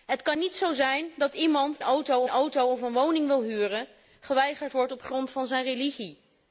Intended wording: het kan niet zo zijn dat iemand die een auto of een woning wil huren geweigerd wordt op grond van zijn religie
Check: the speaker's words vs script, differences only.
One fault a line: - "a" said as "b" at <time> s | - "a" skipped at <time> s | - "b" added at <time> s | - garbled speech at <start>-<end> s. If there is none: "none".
- "die" said as "auto" at 1.8 s